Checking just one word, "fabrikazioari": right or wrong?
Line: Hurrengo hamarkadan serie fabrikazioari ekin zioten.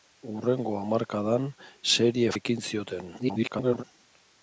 wrong